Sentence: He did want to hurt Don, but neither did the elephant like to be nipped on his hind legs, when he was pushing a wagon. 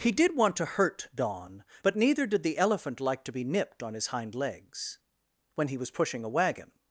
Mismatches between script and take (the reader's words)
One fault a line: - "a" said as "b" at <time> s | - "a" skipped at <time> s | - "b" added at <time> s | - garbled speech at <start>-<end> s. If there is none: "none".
none